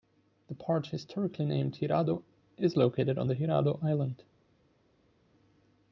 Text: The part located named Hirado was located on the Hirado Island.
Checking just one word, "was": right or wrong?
wrong